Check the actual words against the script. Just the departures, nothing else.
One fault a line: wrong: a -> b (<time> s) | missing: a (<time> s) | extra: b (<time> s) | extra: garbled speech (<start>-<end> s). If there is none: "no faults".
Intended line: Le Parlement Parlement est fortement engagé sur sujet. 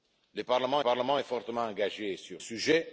no faults